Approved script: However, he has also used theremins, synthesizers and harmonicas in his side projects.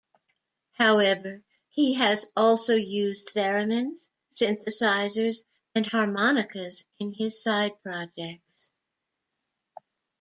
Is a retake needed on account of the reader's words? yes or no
no